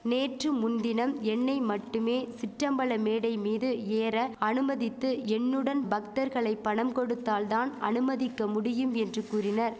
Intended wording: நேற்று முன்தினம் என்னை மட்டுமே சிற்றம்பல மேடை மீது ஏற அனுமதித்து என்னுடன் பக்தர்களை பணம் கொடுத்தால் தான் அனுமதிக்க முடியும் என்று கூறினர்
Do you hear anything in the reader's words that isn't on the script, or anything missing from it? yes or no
no